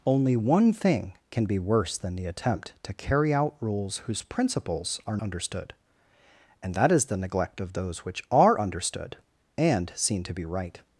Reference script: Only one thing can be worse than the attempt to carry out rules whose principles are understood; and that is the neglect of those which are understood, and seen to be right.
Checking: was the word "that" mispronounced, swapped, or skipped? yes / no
no